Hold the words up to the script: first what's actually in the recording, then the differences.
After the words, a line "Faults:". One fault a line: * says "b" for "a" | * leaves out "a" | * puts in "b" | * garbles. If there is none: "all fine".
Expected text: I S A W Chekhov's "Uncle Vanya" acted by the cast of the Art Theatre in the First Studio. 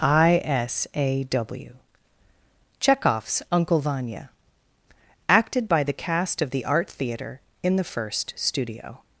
I S A W Chekhov's "Uncle Vanya" acted by the cast of the Art Theatre in the First Studio.
Faults:
all fine